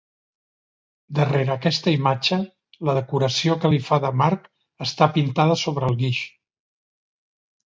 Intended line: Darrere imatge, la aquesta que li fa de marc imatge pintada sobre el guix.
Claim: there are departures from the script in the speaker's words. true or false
true